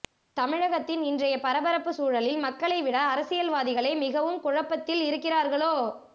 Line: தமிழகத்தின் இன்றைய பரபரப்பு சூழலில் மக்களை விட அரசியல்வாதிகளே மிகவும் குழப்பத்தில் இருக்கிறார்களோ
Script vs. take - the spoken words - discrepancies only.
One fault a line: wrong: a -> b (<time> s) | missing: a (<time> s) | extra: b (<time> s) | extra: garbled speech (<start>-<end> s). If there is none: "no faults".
no faults